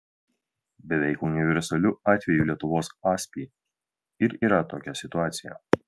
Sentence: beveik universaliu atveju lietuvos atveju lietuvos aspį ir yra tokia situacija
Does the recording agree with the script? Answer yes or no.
no